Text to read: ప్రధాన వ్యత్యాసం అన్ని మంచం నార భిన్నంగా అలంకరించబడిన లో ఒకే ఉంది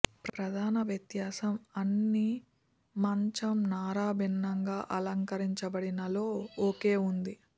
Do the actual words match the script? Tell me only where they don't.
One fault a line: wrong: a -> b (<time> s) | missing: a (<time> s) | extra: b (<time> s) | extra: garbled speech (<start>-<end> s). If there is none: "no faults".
no faults